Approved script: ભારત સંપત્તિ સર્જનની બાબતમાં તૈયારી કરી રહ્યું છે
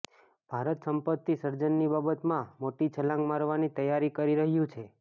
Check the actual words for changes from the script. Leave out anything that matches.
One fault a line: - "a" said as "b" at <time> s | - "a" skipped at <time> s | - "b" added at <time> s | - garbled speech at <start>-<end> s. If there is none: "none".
- "મોટી છલાંગ મારવાની" added at 2.6 s